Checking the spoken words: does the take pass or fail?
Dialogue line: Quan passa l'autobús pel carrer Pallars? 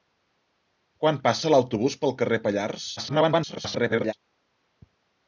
fail